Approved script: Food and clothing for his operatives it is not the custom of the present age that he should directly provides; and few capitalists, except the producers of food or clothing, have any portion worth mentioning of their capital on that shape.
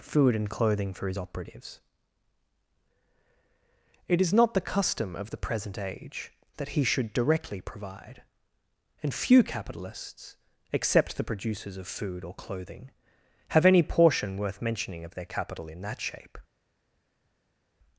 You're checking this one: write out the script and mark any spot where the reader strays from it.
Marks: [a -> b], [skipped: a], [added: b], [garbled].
Food and clothing for his operatives it is not the custom of the present age that he should directly [provides; -> provide] and few capitalists, except the producers of food or clothing, have any portion worth mentioning of their capital [on -> in] that shape.